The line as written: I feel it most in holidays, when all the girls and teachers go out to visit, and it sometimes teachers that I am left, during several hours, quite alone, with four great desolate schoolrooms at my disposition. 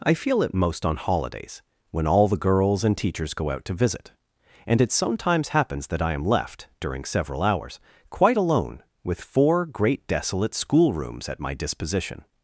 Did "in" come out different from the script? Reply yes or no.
yes